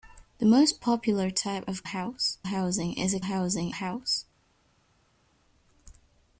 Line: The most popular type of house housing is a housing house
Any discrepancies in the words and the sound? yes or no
no